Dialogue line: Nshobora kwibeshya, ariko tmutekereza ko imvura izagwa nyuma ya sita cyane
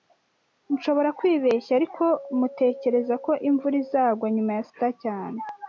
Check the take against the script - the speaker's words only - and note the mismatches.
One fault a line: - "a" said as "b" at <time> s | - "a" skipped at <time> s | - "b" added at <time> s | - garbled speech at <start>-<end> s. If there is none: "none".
none